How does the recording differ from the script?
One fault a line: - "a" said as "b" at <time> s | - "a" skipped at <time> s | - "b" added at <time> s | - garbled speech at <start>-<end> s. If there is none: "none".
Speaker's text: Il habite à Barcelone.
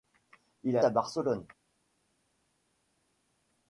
- "habite" skipped at 0.8 s